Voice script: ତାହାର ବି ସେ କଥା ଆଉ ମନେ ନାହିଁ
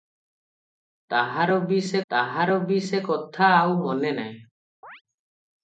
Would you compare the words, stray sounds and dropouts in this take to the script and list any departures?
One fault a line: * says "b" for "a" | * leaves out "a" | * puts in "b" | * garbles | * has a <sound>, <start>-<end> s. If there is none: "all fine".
* puts in "ତାହାର ବି ସେ"
* has a chirp, 4.8-5.0 s